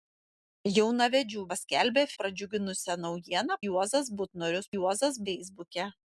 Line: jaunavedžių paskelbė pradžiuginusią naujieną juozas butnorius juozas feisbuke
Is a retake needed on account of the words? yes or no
no